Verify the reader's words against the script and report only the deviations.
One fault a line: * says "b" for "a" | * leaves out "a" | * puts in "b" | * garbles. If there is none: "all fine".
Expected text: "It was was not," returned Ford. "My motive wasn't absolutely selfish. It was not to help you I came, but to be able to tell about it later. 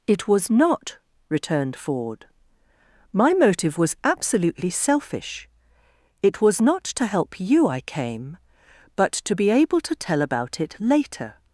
* leaves out "was"
* says "was" for "wasn't"